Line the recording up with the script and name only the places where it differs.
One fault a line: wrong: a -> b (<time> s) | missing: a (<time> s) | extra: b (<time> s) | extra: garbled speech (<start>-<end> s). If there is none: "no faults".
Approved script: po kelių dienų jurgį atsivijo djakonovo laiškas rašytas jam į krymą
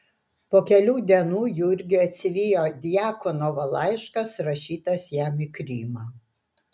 no faults